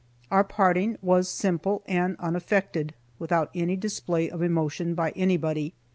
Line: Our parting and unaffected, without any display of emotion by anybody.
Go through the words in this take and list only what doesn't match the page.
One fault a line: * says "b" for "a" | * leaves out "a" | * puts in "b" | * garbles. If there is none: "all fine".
* puts in "was simple"